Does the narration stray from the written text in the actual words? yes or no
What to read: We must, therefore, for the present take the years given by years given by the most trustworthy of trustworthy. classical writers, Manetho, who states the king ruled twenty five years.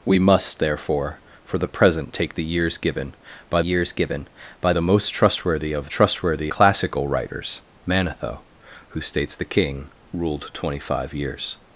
no